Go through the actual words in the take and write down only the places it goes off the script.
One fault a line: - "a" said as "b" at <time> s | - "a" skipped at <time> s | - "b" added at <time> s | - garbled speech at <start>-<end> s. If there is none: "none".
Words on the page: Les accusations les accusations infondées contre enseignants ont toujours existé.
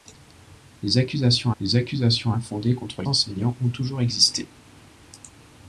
none